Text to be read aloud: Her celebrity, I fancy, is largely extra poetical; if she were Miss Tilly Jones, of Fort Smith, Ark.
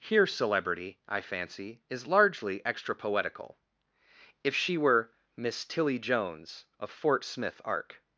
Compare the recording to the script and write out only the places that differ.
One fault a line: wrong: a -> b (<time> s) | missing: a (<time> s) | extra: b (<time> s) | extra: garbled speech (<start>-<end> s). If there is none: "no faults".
wrong: Her -> Here (0.0 s)